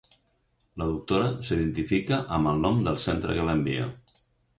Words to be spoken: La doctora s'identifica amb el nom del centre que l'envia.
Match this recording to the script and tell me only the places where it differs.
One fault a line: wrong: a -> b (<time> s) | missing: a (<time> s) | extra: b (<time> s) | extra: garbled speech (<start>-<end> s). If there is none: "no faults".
no faults